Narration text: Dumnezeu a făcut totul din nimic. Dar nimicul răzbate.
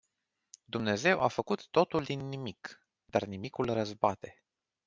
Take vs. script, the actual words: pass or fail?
pass